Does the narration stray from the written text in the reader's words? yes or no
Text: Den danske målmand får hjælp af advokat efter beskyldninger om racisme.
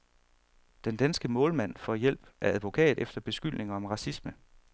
no